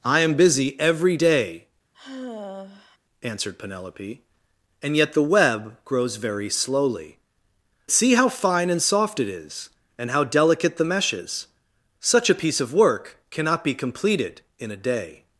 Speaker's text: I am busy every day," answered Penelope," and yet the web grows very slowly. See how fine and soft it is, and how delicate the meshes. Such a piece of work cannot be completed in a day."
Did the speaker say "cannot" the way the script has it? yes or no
yes